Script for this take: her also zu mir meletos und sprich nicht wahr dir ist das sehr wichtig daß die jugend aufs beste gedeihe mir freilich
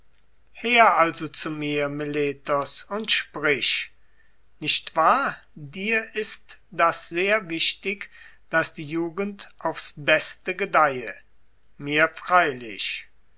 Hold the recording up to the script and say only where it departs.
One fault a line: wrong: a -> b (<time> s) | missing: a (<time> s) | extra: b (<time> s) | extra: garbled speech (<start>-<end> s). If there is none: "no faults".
no faults